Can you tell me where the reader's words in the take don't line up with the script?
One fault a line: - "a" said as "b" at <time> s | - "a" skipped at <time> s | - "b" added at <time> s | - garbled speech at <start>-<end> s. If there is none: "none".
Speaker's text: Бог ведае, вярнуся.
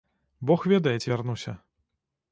- "ці" added at 1.0 s